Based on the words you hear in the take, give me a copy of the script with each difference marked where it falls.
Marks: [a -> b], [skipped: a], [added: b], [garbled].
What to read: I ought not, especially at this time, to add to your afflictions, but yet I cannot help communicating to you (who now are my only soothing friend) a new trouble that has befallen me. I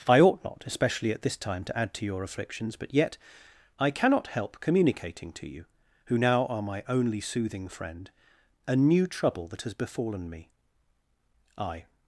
I ought not, especially at this time, to add to your afflictions, but yet I cannot help communicating to you (who now are my only soothing friend) a new trouble that has befallen me. I